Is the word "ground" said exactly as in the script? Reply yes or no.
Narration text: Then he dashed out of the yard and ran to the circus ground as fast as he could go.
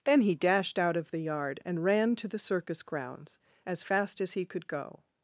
no